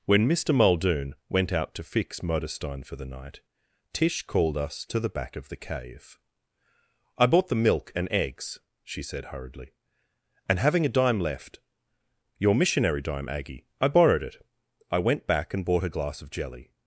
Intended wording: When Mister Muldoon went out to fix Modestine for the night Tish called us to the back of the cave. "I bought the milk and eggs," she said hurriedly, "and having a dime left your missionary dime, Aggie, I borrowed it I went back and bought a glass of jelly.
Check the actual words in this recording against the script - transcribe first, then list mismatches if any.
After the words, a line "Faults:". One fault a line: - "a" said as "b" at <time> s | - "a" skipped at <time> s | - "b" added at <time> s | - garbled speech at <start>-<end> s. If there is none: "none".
When Mister Muldoon went out to fix Modestine for the night Tish called us to the back of the cave. "I bought the milk and eggs," she said hurriedly, "and having a dime left your missionary dime, Aggie, I borrowed it I went back and bought a glass of jelly.
Faults:
none